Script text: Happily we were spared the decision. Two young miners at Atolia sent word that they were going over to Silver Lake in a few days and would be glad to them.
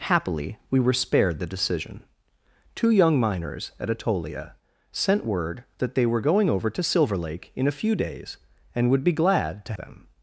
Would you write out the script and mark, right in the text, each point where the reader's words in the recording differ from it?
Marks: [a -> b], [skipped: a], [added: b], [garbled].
Happily we were spared the decision. Two young miners at Atolia sent word that they were going over to Silver Lake in a few days and would be glad to them.